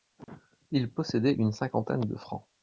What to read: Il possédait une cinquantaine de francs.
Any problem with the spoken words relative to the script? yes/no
no